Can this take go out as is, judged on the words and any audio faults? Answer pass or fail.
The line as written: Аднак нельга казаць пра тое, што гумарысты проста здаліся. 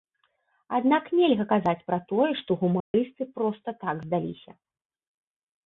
fail